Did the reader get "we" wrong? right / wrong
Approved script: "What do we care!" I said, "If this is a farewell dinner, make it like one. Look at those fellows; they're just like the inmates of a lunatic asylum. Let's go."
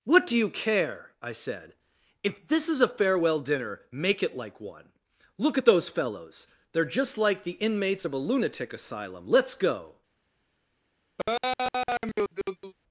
wrong